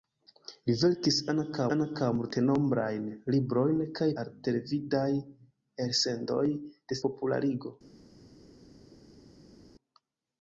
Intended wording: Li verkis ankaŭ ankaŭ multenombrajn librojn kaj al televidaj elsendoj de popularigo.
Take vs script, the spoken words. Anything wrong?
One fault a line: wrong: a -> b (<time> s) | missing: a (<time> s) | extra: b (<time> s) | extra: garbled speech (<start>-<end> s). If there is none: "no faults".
no faults